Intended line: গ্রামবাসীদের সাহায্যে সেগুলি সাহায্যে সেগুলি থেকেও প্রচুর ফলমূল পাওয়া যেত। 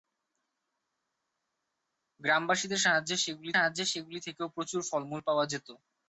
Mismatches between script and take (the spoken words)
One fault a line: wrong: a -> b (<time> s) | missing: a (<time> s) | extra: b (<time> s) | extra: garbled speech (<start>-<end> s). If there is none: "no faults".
no faults